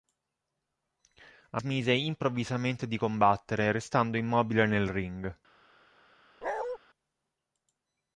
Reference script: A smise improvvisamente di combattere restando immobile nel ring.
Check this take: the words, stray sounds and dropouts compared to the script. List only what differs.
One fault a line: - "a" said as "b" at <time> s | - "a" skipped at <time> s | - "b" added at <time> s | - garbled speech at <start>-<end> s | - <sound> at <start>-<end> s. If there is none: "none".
- bark at 6.4-6.8 s